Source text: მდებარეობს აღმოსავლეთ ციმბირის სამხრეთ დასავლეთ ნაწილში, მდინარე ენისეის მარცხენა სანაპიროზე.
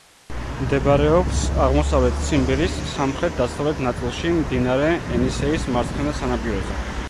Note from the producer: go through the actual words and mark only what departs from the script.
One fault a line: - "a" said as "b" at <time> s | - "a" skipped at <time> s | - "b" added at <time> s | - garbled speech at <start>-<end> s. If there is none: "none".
none